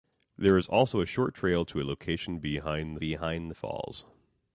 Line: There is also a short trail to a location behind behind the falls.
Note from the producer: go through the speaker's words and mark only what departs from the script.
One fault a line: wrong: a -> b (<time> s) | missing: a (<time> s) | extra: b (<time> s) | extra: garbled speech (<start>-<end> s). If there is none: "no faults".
no faults